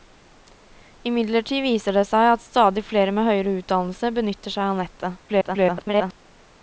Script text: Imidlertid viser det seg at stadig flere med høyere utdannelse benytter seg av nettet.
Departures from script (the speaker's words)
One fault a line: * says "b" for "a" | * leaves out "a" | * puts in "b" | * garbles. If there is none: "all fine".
* garbles